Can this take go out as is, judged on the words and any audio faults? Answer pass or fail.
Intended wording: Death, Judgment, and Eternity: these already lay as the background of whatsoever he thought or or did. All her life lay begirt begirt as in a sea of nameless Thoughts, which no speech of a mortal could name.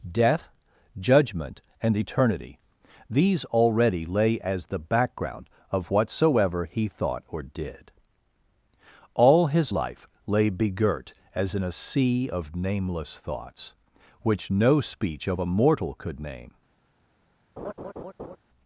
fail